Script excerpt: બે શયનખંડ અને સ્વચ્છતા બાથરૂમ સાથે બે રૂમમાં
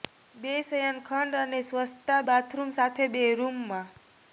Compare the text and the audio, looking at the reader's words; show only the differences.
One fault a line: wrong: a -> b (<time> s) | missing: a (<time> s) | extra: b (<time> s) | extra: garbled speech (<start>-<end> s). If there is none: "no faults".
no faults